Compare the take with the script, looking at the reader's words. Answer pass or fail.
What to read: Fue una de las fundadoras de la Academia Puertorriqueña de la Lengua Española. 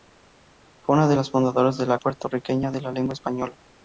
fail